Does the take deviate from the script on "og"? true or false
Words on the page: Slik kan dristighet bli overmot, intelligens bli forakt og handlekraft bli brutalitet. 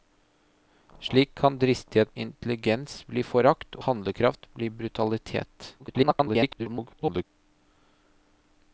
true